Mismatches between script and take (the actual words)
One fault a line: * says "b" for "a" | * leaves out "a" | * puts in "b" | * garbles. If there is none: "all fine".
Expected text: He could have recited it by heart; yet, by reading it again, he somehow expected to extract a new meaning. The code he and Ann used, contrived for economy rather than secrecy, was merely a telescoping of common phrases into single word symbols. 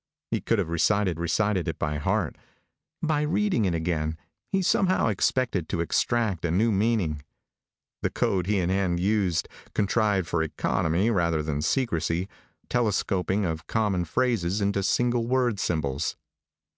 * puts in "recited"
* leaves out "yet"
* leaves out "was merely a"